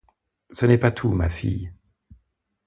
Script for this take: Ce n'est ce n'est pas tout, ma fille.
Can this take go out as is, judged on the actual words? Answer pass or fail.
fail